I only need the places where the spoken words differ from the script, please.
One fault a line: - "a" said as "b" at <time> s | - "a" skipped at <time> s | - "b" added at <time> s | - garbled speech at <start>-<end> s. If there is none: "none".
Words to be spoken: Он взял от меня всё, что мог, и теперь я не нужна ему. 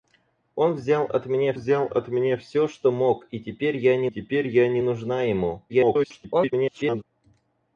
- "взял от меня" added at 1.5 s
- "теперь я не" added at 4.1 s
- garbled speech at 5.7-7.0 s